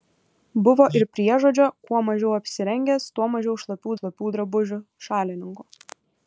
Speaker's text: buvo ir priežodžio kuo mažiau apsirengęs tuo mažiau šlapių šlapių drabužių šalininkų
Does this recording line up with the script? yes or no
yes